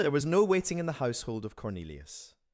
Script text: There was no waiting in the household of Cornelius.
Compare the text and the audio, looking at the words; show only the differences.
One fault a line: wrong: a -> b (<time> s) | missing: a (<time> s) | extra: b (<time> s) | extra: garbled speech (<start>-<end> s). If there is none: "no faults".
no faults